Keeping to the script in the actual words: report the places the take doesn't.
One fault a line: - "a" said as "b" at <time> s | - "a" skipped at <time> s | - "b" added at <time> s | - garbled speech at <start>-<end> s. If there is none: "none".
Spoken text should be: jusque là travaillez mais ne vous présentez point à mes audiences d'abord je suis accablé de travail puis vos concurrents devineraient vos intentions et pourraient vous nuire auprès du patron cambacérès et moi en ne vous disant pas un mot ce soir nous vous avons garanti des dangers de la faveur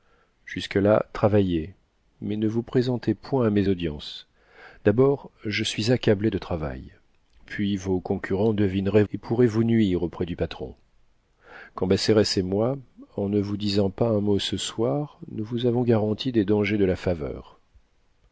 - "vos intentions" skipped at 9.0 s